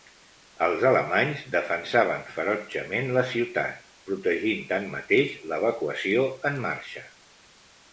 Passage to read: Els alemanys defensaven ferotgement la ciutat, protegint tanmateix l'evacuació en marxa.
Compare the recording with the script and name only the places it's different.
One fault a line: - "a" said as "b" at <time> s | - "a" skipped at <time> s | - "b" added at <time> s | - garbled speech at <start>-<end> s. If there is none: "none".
none